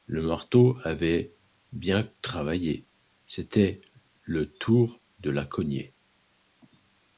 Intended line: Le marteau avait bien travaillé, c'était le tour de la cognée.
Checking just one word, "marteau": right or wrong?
right